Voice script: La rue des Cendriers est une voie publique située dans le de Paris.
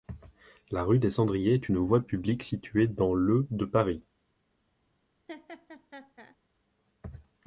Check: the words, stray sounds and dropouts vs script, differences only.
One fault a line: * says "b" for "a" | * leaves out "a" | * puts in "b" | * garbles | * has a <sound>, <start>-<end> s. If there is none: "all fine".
* has a laugh, 5.3-6.4 s